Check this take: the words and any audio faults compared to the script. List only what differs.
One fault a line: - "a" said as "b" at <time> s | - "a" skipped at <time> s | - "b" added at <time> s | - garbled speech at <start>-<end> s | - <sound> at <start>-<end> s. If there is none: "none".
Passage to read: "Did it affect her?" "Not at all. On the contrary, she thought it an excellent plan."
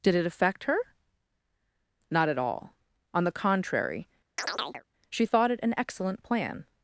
- chirp at 4.4-4.8 s